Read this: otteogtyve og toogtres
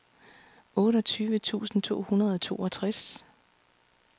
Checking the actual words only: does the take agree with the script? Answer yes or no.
no